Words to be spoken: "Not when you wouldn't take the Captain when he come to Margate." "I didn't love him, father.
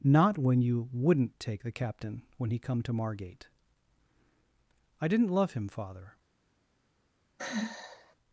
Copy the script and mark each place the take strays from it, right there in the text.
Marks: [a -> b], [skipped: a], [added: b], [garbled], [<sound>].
"Not when you wouldn't take the Captain when he come to Margate." "I didn't love him, father. [sigh]